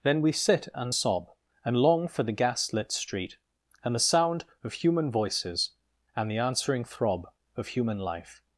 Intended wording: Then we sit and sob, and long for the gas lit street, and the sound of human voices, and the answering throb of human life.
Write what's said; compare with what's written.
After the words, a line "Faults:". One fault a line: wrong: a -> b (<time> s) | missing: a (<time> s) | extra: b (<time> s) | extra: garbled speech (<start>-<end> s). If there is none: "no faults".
Then we sit and sob, and long for the gas lit street, and the sound of human voices, and the answering throb of human life.
Faults:
no faults